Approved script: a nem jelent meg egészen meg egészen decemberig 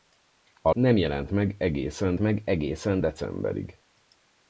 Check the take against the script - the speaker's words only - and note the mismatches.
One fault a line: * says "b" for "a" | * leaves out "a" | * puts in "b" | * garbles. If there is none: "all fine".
all fine